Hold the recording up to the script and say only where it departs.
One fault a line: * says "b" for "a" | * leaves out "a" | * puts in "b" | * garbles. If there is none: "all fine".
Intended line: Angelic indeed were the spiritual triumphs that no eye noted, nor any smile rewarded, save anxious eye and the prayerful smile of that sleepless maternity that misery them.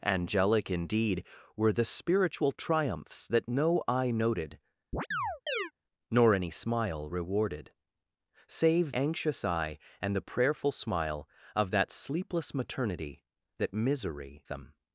all fine